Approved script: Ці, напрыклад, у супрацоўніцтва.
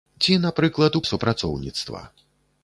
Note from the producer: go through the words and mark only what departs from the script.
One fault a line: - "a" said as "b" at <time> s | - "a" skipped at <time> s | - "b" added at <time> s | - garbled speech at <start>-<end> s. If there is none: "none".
none